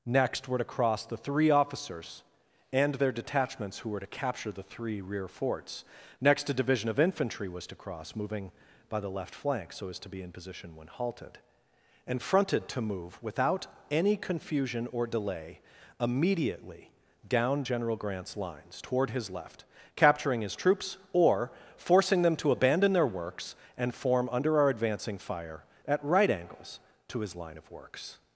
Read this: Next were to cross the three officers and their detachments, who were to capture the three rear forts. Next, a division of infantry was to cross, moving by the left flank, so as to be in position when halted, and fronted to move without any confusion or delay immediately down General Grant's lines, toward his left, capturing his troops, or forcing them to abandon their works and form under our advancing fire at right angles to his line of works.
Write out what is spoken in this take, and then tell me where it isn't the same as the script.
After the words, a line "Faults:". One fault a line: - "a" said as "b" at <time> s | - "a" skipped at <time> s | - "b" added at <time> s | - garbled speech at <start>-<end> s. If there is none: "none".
Next were to cross the three officers and their detachments, who were to capture the three rear forts. Next, a division of infantry was to cross, moving by the left flank, so as to be in position when halted, and fronted to move without any confusion or delay immediately down General Grant's lines, toward his left, capturing his troops, or forcing them to abandon their works and form under our advancing fire at right angles to his line of works.
Faults:
none